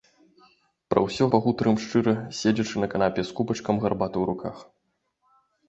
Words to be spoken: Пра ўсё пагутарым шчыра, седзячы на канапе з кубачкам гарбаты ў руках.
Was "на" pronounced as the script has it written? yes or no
yes